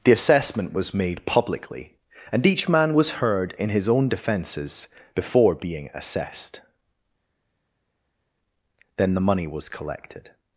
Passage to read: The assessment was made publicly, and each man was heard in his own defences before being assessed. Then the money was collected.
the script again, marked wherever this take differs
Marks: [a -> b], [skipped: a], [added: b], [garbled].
The assessment was made publicly, and each man was heard in his own defences before being assessed. Then the money was collected.